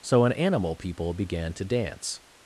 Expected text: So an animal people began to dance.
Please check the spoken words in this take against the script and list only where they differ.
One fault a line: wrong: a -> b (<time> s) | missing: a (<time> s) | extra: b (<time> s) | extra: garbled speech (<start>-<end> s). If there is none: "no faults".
no faults